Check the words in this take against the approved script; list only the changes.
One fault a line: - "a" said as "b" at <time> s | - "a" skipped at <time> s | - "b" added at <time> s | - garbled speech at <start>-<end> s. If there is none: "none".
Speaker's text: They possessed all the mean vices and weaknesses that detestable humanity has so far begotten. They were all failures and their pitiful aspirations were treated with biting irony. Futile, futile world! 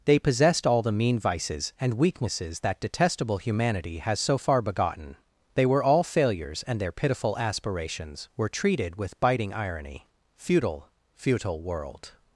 none